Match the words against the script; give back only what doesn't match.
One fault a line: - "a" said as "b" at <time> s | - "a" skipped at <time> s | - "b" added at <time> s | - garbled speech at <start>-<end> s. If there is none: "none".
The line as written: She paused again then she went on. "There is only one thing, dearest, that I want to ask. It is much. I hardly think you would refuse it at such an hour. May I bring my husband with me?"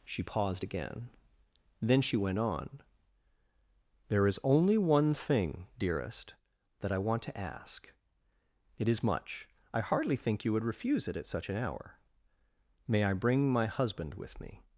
none